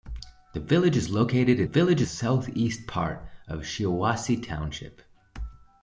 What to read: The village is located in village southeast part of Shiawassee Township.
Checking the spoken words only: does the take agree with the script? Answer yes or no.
yes